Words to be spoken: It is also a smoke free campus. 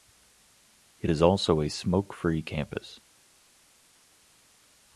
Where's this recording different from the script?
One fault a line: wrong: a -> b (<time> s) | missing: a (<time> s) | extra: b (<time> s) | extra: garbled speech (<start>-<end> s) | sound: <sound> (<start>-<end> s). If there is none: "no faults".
no faults